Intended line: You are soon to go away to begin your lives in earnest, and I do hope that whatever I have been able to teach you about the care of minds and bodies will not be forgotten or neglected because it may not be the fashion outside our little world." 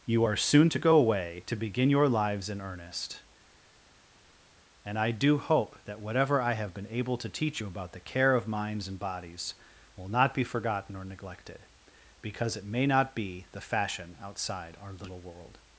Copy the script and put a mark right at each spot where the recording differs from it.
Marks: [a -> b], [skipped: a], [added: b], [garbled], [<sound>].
You are soon to go away to begin your lives in earnest, and I do hope that whatever I have been able to teach you about the care of minds and bodies will not be forgotten or neglected because it may not be the fashion outside our little world."